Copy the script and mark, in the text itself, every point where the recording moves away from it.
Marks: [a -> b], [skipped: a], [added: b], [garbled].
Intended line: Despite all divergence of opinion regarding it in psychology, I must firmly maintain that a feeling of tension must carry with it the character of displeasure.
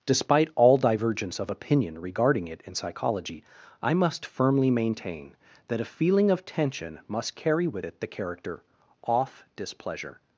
Despite all divergence of opinion regarding it in psychology, I must firmly maintain that a feeling of tension must carry with it the character [of -> off] displeasure.